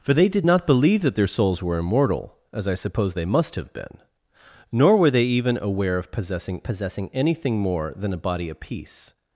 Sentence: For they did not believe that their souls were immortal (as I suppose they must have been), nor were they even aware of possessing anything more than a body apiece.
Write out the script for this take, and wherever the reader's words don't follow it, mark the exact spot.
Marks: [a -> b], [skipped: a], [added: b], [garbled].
For they did not believe that their souls were immortal (as I suppose they must have been), nor were they even aware of possessing [added: possessing] anything more than a body apiece.